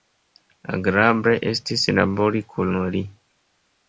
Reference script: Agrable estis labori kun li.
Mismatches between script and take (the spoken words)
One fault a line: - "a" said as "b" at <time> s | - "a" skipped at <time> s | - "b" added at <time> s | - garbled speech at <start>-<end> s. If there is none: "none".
none